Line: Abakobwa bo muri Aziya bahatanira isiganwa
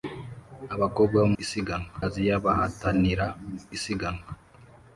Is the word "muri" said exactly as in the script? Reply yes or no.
no